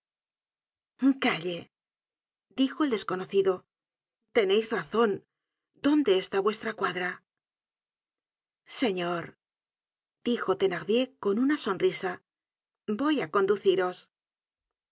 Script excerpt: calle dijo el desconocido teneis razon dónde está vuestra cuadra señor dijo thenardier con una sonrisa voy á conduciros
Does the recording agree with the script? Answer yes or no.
yes